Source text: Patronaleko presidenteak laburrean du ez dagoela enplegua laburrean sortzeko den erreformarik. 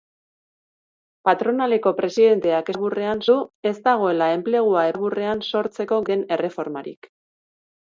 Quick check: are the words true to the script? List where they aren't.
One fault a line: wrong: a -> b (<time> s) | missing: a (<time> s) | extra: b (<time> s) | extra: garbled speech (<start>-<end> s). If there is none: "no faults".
no faults